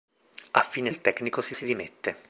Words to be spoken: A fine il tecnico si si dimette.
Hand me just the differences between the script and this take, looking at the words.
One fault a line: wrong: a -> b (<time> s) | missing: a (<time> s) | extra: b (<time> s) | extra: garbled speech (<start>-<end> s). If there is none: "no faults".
no faults